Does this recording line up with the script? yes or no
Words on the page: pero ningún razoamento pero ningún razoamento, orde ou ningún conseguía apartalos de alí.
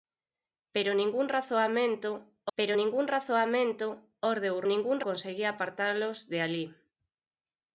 yes